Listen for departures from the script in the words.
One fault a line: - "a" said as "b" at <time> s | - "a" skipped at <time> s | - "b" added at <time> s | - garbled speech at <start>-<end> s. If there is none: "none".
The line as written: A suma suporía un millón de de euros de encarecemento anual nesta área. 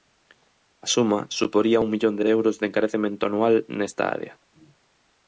none